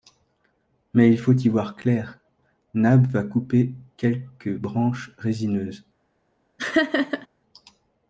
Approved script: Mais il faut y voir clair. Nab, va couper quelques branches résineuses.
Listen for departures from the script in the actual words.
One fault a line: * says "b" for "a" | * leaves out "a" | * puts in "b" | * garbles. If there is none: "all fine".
all fine